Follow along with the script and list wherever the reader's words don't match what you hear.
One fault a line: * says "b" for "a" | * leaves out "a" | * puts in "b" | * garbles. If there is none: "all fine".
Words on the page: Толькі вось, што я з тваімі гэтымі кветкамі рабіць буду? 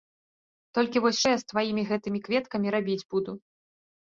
* leaves out "што"